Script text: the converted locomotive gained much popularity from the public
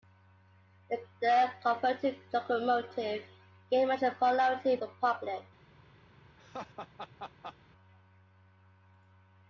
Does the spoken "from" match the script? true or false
false